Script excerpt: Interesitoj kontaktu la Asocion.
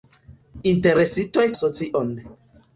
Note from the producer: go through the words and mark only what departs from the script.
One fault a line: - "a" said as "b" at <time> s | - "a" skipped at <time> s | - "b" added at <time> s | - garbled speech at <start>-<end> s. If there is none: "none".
- "kontaktu la" skipped at 1.5 s